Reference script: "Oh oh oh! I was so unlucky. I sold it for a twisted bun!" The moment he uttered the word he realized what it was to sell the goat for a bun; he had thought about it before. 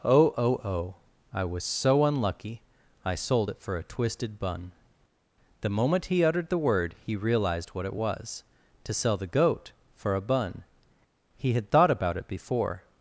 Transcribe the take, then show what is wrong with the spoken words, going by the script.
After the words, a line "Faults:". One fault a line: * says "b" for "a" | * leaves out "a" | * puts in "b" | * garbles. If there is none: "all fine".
"Oh oh oh! I was so unlucky. I sold it for a twisted bun!" The moment he uttered the word he realized what it was to sell the goat for a bun; he had thought about it before.
Faults:
all fine